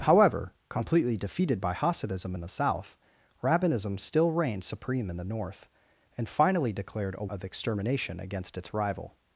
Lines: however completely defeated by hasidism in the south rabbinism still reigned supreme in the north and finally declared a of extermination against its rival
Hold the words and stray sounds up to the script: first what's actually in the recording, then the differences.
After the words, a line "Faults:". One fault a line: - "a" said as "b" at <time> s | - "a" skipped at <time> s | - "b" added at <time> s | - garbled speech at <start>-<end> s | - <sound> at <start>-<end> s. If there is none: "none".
however completely defeated by hasidism in the south rabbinism still reigned supreme in the north and finally declared a of extermination against its rival
Faults:
none